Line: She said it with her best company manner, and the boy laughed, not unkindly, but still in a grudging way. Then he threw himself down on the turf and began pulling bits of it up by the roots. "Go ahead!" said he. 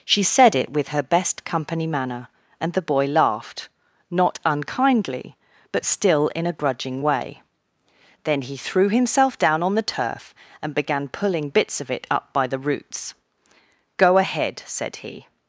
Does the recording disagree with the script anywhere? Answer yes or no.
no